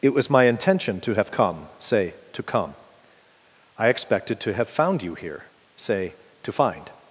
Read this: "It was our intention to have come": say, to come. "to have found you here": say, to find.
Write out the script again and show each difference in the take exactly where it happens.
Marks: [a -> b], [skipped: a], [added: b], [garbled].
"It was [our -> my] intention to have come": say, to come. [added: I expected] "to have found you here": say, to find.